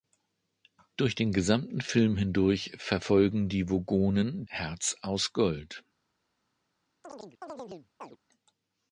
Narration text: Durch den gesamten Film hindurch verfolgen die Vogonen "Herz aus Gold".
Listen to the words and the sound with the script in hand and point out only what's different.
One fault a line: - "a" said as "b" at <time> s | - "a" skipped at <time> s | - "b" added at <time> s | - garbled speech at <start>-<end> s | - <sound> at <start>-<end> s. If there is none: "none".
- chirp at 7.0-8.2 s